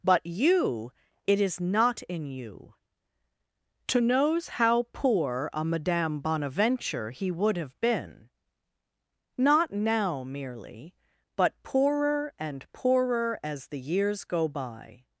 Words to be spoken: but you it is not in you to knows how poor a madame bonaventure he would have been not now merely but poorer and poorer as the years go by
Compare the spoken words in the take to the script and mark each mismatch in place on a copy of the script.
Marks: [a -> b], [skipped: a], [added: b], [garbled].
but you it is not in you to knows how poor a madame bonaventure he would have been not now merely but poorer and poorer as the years go by